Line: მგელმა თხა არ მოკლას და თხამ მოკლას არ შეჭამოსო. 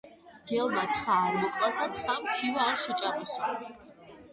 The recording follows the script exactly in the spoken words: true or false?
false